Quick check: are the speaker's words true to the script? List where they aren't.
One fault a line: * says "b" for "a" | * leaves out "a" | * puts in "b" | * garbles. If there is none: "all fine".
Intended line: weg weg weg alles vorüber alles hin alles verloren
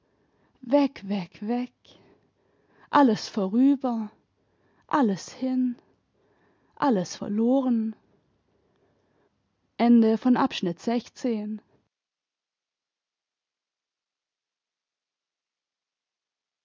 all fine